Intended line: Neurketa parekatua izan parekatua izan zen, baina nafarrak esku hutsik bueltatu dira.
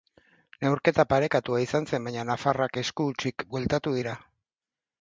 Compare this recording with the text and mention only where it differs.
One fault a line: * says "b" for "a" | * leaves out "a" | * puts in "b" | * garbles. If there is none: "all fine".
* leaves out "parekatua izan"